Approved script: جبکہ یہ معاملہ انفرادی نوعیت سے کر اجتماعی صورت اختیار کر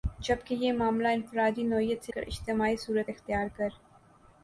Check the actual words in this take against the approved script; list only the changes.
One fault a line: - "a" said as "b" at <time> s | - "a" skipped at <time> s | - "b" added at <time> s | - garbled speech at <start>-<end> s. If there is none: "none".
none